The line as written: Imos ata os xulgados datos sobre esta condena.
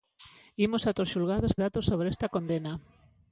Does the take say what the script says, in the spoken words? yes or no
yes